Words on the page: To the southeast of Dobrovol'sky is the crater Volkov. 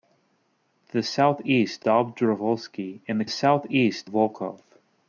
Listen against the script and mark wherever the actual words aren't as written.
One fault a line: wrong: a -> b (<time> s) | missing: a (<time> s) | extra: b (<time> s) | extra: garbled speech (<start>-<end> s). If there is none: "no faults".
missing: of (1.9 s)
wrong: crater -> southeast (3.3 s)